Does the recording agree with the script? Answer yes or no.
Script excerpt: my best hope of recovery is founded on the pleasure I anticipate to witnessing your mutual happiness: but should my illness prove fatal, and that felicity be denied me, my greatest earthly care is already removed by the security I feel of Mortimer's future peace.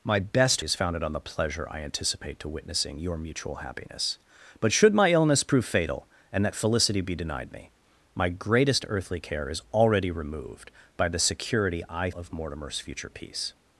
no